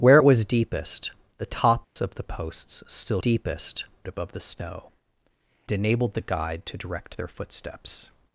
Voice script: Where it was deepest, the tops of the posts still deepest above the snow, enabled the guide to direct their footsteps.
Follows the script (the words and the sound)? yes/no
no